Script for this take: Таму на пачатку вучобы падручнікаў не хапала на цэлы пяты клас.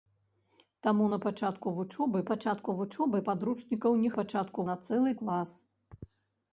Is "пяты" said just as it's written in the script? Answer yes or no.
no